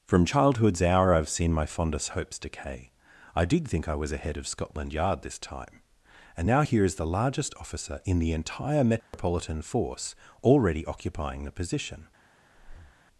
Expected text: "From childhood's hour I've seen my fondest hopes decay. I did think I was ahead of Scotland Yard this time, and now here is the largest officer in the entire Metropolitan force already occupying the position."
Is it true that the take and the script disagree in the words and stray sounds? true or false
true